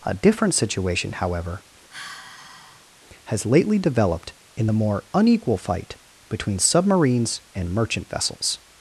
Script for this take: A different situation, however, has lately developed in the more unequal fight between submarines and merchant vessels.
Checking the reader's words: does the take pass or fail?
pass